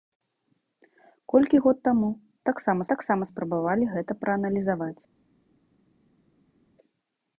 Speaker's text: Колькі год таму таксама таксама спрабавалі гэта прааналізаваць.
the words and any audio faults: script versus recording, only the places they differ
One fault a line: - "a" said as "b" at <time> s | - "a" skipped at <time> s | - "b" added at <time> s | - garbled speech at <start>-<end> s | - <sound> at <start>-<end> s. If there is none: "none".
none